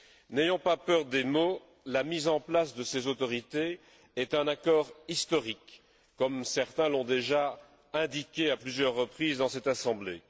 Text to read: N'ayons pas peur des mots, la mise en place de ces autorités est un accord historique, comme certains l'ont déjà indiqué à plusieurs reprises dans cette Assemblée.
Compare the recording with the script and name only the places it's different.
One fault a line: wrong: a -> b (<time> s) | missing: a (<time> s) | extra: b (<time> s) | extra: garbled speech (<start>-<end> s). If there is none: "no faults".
no faults